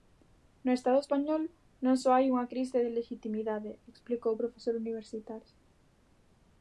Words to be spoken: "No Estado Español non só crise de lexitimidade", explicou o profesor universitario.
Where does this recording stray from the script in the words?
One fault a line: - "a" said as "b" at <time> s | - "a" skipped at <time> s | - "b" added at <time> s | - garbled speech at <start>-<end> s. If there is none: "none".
- "hai unha" added at 2.1 s